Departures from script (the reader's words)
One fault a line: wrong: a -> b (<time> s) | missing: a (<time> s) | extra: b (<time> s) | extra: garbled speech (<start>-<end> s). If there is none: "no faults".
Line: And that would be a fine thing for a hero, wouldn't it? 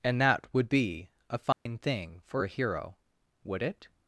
wrong: wouldn't -> would (3.4 s)